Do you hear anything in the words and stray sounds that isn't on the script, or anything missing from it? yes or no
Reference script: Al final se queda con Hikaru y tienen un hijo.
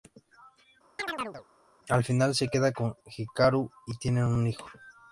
yes